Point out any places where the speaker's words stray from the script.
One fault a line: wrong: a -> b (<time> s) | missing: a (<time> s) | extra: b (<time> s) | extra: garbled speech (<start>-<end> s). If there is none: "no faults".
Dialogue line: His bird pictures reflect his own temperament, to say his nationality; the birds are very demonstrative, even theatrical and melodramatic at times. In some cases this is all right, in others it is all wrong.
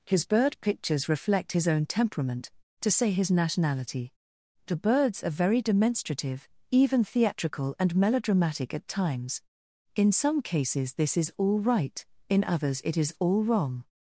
no faults